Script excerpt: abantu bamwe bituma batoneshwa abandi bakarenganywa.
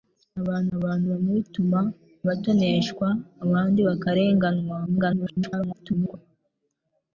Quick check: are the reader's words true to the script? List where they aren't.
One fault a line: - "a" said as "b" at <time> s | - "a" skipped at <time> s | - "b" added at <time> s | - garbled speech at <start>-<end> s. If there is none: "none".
- "abantu" added at 0.8 s
- garbled speech at 4.9-6.2 s